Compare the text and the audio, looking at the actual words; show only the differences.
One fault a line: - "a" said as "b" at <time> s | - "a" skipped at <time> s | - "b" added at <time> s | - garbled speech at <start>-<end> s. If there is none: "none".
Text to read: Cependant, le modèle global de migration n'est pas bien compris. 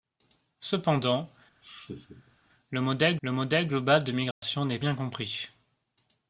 - "le modèle" added at 3.2 s
- "pas" skipped at 4.8 s